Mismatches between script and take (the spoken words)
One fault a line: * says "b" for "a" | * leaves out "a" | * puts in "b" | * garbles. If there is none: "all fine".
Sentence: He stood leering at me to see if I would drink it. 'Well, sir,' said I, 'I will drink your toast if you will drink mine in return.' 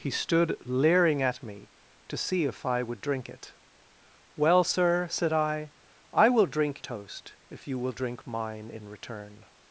* leaves out "your"